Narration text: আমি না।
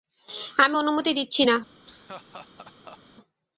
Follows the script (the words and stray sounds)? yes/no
no